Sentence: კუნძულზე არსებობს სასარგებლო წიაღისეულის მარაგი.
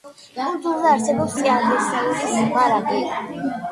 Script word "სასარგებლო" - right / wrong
wrong